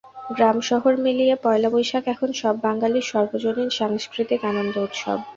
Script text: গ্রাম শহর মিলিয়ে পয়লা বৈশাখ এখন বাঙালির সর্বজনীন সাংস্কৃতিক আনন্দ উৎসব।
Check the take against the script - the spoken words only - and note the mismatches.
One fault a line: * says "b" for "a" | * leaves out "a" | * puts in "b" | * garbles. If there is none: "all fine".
* puts in "সব"